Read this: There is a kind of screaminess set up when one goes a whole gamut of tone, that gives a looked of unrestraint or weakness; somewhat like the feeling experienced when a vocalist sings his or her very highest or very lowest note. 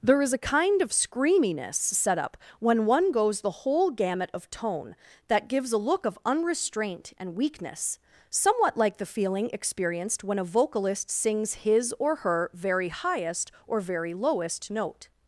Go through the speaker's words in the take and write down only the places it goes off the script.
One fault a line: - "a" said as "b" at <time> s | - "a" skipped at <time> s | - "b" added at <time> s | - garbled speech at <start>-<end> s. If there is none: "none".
- "a" said as "the" at 3.4 s
- "looked" said as "look" at 5.8 s
- "or" said as "and" at 7.2 s